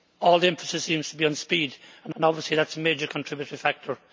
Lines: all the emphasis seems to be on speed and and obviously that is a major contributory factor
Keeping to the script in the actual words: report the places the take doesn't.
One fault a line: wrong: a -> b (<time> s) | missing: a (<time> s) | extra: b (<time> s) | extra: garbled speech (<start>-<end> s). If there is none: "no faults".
no faults